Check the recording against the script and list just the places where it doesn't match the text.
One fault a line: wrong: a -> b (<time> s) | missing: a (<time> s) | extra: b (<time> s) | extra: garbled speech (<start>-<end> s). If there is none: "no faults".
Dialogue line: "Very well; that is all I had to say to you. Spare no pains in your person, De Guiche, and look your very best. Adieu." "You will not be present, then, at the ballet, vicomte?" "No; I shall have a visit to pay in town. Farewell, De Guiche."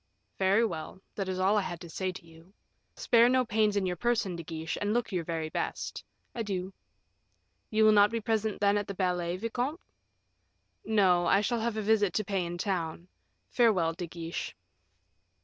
no faults